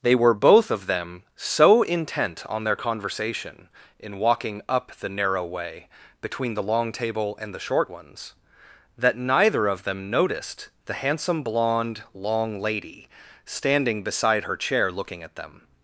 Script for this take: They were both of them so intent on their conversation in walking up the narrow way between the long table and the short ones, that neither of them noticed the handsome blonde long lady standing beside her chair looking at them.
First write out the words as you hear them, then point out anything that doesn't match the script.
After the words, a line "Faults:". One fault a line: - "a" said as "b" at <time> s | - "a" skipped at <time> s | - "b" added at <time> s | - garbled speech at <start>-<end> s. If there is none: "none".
They were both of them so intent on their conversation in walking up the narrow way between the long table and the short ones, that neither of them noticed the handsome blonde long lady standing beside her chair looking at them.
Faults:
none